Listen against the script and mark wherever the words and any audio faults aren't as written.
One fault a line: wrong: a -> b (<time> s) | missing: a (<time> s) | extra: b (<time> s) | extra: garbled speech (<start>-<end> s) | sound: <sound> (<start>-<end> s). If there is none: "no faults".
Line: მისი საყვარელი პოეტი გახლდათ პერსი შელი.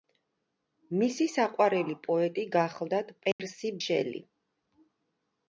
sound: dropout (3.3-3.4 s)